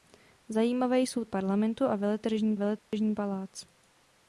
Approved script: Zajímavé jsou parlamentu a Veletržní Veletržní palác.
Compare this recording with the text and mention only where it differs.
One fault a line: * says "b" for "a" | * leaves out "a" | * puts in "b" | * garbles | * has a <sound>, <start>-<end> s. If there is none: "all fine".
* has a dropout, 2.8-2.9 s